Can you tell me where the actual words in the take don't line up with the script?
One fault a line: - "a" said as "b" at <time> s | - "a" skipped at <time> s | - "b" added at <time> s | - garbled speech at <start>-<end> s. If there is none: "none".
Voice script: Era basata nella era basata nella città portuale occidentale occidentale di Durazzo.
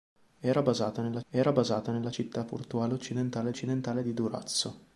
none